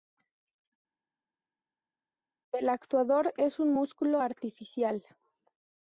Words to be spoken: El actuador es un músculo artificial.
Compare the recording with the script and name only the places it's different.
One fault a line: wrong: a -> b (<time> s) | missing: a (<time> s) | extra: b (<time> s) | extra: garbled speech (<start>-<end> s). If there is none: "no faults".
no faults